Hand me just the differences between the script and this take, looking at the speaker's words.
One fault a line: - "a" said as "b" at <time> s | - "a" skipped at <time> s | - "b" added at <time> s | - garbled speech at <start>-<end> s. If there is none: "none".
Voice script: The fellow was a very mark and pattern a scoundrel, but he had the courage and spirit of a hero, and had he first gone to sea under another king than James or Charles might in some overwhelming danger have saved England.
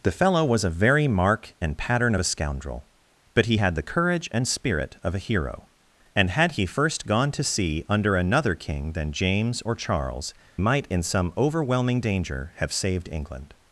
none